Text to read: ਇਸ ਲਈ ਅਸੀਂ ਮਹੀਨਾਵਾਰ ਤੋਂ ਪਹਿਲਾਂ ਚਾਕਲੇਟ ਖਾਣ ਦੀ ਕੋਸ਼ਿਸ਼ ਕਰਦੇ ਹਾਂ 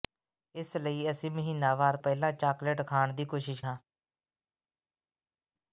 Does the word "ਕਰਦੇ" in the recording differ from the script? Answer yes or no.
yes